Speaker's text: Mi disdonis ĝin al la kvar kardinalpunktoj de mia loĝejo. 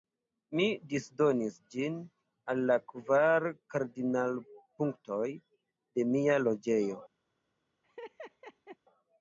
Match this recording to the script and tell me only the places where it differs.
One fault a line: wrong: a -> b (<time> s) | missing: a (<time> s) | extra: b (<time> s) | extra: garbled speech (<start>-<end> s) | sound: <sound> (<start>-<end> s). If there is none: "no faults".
sound: laugh (7.8-8.8 s)